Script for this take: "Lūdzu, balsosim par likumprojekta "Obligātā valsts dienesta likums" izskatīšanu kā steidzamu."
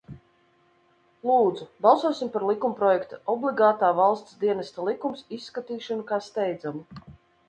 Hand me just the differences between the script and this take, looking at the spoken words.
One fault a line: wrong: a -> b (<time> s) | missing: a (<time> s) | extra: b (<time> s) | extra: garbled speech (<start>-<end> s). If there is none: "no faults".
no faults